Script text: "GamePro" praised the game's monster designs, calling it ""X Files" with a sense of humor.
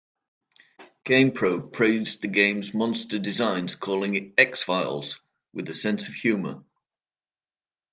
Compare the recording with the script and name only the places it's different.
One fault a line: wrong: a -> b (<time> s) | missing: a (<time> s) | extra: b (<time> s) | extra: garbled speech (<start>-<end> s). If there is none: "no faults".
no faults